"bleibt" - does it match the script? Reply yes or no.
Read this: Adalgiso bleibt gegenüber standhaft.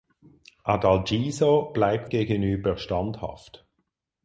yes